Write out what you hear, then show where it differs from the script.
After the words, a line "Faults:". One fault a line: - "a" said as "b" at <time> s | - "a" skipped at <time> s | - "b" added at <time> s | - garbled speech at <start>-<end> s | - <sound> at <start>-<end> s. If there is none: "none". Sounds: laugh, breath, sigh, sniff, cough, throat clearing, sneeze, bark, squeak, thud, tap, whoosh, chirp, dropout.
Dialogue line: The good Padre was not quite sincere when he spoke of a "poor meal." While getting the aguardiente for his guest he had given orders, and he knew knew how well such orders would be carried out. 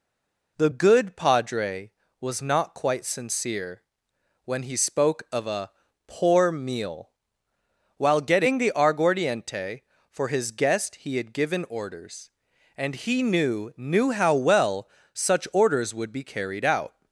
The good Padre was not quite sincere when he spoke of a "poor meal." While getting the aguardiente for his guest he had given orders, and he knew knew how well such orders would be carried out.
Faults:
none